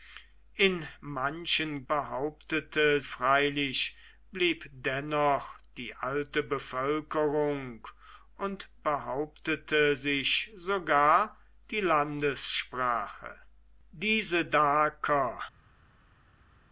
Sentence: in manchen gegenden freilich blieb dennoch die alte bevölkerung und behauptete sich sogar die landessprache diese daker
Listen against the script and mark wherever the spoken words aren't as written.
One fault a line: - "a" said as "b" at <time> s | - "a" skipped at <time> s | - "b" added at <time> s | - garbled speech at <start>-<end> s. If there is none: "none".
- "gegenden" said as "behauptete" at 1.9 s